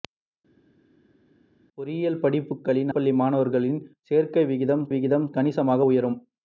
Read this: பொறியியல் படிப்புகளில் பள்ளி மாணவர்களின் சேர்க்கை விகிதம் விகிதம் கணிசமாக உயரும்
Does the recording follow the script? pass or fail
pass